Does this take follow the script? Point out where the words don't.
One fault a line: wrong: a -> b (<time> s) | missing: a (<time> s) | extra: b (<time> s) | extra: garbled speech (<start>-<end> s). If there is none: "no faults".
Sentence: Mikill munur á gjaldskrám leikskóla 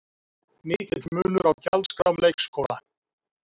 no faults